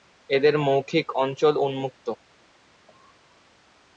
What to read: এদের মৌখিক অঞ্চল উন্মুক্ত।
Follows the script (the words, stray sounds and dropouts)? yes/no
yes